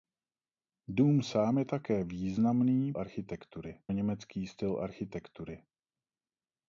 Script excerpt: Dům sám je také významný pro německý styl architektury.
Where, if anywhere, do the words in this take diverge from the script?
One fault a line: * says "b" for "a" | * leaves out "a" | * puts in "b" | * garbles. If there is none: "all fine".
* says "architektury" for "pro"